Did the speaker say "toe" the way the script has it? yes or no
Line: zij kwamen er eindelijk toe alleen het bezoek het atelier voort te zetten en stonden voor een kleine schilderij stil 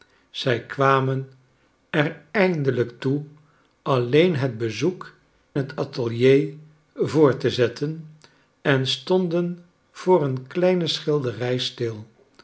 yes